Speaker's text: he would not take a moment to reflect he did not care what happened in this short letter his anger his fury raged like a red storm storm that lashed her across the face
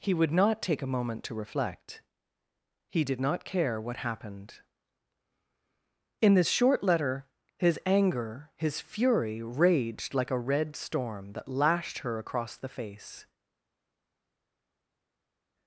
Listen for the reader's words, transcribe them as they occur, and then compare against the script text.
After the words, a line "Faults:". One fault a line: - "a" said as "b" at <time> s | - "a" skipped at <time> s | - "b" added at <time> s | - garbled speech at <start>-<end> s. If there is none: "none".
he would not take a moment to reflect he did not care what happened in this short letter his anger his fury raged like a red storm that lashed her across the face
Faults:
- "storm" skipped at 11.3 s